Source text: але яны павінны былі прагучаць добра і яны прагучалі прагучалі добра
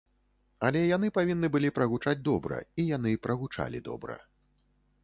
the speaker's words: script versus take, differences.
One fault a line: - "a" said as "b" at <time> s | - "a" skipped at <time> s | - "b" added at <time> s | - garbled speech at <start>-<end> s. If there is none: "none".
- "прагучалі" skipped at 3.8 s